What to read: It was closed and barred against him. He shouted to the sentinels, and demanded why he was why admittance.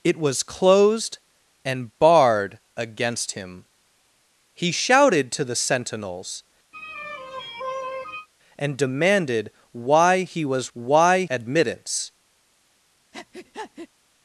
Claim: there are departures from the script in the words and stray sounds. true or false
true